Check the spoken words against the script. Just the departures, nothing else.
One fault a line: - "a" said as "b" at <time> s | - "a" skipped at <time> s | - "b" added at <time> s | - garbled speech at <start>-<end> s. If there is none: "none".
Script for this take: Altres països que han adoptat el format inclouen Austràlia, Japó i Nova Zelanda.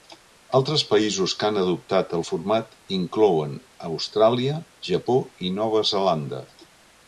none